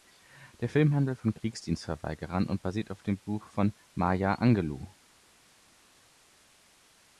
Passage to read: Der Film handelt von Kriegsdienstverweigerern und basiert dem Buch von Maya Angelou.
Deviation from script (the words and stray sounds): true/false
true